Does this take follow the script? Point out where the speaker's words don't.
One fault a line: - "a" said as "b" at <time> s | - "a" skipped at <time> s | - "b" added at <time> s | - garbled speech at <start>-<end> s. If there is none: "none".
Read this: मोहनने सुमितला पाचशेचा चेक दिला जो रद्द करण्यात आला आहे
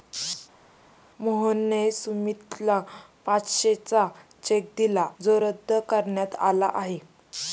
none